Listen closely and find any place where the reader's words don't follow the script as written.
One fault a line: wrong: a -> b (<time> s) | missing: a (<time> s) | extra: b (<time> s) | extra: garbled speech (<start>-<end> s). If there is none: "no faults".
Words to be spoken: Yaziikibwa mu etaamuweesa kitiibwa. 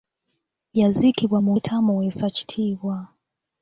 no faults